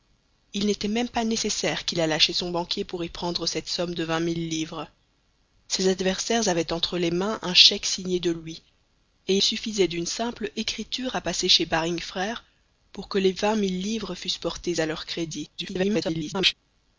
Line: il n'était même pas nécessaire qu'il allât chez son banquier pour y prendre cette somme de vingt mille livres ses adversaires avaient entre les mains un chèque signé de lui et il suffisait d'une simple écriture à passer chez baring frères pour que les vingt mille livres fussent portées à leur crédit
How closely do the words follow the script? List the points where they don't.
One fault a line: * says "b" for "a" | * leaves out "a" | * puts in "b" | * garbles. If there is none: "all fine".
* leaves out "il"
* garbles